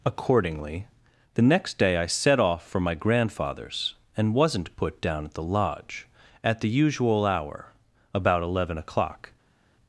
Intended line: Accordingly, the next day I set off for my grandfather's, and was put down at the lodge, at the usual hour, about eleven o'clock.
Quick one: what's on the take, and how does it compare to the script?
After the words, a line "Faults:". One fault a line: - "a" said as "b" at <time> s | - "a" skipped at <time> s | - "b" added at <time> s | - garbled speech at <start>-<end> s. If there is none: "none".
Accordingly, the next day I set off for my grandfather's, and wasn't put down at the lodge, at the usual hour, about eleven o'clock.
Faults:
- "was" said as "wasn't" at 4.3 s